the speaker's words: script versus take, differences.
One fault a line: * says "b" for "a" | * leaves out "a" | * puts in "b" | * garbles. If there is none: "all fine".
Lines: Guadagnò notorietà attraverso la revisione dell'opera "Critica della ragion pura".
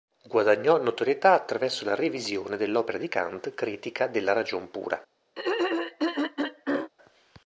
* puts in "di Kant"